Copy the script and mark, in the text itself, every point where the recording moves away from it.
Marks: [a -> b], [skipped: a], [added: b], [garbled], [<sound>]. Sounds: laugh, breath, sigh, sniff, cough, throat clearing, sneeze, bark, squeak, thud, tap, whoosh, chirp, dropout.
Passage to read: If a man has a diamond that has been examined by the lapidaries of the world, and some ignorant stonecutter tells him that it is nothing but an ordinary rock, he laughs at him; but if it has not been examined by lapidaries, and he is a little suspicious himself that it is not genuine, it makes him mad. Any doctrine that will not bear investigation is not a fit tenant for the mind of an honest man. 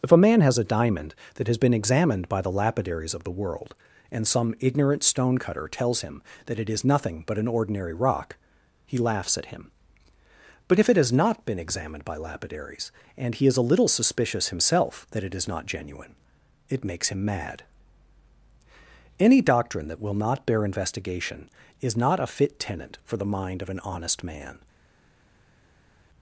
If a man has a diamond that has been examined by the lapidaries of the world, and some ignorant stonecutter tells him that it is nothing but an ordinary rock, he laughs at him; but if it has not been examined by lapidaries, and he is a little suspicious himself that it is not genuine, it makes him mad. Any doctrine that will not bear investigation is not a fit tenant for the mind of an honest man.